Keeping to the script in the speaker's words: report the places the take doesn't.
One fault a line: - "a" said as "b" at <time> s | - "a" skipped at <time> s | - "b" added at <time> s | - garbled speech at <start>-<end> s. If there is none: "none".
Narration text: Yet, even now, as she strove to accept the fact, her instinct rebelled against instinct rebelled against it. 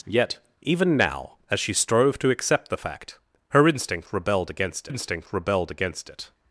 none